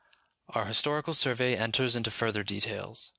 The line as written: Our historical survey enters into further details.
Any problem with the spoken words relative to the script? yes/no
no